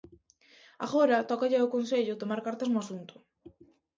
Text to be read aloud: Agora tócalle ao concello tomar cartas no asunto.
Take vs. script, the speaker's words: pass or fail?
pass